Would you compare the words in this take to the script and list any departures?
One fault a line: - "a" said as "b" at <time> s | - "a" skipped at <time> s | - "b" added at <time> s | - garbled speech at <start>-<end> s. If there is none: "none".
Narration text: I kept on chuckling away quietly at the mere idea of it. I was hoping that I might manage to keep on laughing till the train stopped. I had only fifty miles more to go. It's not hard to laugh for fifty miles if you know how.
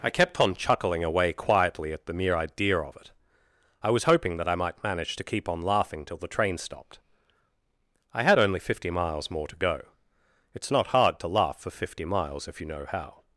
none